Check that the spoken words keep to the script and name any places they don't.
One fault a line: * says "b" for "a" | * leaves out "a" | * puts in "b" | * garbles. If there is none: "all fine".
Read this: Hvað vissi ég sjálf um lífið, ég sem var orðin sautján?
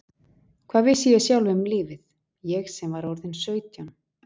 all fine